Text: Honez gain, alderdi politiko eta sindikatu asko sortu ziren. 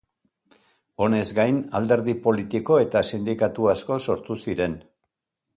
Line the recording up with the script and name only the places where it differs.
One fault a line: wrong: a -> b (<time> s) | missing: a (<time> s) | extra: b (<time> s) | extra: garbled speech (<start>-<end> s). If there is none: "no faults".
no faults